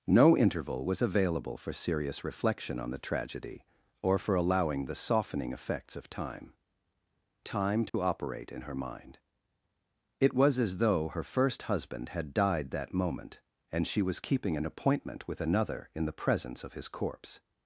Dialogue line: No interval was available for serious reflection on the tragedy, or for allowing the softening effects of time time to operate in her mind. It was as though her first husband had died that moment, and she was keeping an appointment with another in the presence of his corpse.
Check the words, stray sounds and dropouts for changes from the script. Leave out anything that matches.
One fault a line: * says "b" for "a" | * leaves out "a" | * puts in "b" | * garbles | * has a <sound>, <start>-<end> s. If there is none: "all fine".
* has a dropout, 7.9-7.9 s